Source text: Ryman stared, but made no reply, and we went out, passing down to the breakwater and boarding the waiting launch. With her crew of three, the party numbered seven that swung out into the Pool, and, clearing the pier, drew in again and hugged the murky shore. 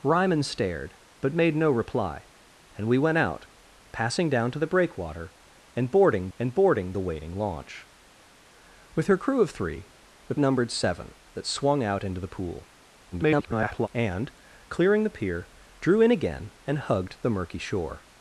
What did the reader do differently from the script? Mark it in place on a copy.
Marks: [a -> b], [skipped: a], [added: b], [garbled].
Ryman stared, but made no reply, and we went out, passing down to the breakwater and boarding [added: and boarding] the waiting launch. With her crew of three, the [skipped: party] numbered seven that swung out into the Pool, [garbled] and, clearing the pier, drew in again and hugged the murky shore.